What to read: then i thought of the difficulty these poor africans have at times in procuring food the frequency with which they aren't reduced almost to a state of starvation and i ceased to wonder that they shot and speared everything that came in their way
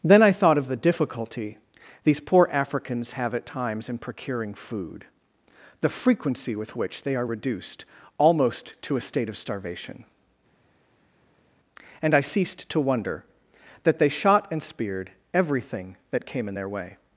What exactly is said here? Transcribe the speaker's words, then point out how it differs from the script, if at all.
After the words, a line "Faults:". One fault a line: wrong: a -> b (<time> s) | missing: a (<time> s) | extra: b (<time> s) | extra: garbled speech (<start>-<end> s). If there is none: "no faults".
then i thought of the difficulty these poor africans have at times in procuring food the frequency with which they are reduced almost to a state of starvation and i ceased to wonder that they shot and speared everything that came in their way
Faults:
wrong: aren't -> are (7.2 s)